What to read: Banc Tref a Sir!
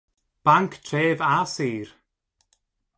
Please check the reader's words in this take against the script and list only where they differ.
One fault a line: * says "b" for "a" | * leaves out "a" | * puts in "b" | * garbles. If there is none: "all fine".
all fine